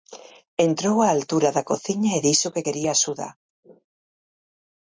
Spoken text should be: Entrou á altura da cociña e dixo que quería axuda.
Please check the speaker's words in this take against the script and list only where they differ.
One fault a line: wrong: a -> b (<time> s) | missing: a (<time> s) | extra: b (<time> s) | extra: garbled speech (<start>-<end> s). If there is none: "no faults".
no faults